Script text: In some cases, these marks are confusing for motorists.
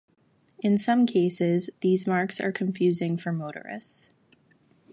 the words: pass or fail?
pass